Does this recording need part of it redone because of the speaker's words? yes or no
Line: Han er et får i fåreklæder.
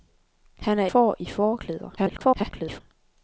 yes